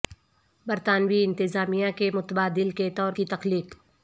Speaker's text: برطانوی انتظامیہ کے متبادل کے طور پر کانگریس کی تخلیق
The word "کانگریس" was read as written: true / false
false